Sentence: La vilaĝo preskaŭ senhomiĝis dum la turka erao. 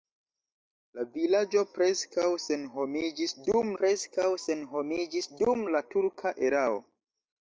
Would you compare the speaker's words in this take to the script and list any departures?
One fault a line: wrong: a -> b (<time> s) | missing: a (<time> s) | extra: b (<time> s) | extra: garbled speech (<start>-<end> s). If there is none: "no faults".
extra: preskaŭ senhomiĝis dum (3.8 s)